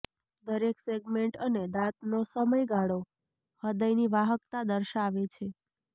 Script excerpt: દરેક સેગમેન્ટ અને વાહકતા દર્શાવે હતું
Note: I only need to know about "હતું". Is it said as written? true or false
false